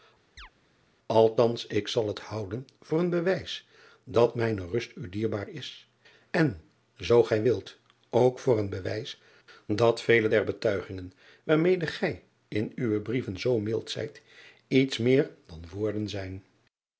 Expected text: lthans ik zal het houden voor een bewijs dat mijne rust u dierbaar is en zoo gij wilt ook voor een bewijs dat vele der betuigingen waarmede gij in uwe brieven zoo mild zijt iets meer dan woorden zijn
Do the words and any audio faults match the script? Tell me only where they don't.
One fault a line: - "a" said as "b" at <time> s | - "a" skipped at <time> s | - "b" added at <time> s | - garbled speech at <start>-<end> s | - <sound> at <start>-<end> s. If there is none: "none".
- chirp at 0.4-0.5 s